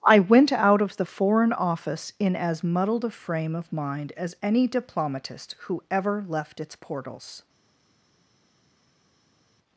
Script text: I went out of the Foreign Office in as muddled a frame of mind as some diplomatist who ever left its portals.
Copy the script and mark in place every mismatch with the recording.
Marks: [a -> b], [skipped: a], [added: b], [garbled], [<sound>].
I went out of the Foreign Office in as muddled a frame of mind as [some -> any] diplomatist who ever left its portals.